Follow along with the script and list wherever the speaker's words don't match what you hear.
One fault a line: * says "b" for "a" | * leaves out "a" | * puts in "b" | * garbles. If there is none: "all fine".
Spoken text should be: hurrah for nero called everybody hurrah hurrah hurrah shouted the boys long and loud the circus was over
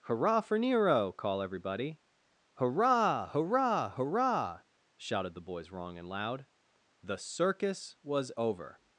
* says "call" for "called"
* says "wrong" for "long"